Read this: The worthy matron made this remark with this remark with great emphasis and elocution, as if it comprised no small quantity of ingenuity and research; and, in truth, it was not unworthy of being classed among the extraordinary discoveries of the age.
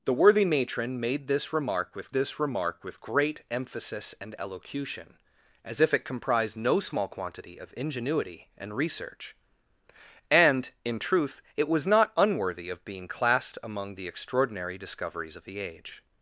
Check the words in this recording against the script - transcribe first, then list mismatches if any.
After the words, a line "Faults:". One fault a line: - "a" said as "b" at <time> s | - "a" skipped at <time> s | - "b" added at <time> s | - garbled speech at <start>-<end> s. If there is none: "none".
The worthy matron made this remark with this remark with great emphasis and elocution, as if it comprised no small quantity of ingenuity and research; and, in truth, it was not unworthy of being classed among the extraordinary discoveries of the age.
Faults:
none